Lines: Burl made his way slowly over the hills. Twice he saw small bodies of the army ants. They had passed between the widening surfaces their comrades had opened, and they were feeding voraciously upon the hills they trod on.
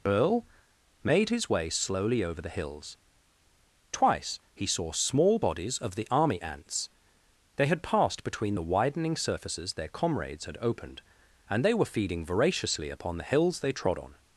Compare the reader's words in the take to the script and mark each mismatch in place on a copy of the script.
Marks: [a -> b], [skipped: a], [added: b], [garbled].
[Burl -> Earl] made his way slowly over the hills. Twice he saw small bodies of the army ants. They had passed between the widening surfaces their comrades had opened, and they were feeding voraciously upon the hills they trod on.